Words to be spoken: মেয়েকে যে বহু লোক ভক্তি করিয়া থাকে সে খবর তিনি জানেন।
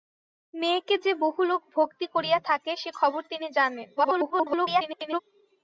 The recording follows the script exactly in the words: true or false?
false